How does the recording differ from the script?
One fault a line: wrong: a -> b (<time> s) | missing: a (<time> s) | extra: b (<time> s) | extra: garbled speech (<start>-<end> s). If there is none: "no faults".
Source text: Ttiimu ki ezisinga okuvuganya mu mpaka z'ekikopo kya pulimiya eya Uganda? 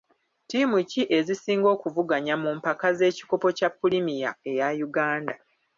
no faults